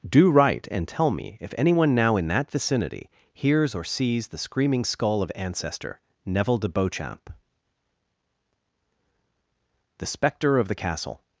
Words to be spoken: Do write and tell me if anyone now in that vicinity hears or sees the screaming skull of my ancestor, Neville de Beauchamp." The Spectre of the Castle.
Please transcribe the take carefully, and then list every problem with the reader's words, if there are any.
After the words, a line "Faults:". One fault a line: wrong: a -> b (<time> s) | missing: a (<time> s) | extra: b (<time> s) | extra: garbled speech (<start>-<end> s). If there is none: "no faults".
Do write and tell me if anyone now in that vicinity hears or sees the screaming skull of ancestor, Neville de Beauchamp." The Spectre of the Castle.
Faults:
missing: my (5.3 s)